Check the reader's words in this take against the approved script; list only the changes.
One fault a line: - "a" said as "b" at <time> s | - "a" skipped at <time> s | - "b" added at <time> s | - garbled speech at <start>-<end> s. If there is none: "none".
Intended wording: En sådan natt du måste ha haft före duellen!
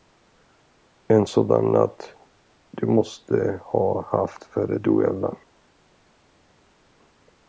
none